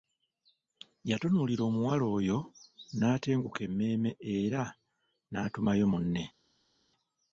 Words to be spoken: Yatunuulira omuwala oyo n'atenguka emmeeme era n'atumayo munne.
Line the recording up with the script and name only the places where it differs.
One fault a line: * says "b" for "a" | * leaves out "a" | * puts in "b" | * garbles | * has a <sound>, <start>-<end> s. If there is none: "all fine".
all fine